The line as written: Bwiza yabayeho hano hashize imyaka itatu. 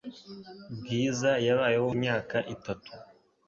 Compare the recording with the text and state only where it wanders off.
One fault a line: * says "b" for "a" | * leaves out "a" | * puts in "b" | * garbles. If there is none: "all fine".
* leaves out "hano hashize"